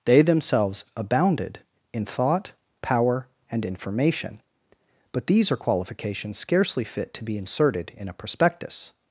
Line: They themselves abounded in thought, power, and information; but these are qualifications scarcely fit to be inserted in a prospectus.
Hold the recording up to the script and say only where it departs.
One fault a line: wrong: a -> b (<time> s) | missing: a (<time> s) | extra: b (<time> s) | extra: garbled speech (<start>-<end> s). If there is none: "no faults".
no faults